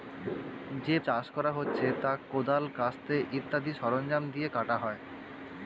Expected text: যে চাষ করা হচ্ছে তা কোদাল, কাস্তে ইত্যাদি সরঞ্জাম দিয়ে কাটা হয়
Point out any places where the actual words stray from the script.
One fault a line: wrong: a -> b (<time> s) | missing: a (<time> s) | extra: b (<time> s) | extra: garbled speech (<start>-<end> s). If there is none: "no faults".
no faults